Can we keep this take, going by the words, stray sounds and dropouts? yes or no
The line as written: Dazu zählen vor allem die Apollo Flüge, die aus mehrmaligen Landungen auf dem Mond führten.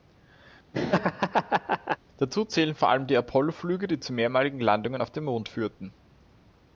no